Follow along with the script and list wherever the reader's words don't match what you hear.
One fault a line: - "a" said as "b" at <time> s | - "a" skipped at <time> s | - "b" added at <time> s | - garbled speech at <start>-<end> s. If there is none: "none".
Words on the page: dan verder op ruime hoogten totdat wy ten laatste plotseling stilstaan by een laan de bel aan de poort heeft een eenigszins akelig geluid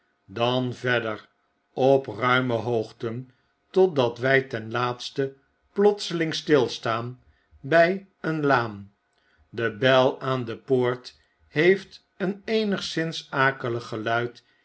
none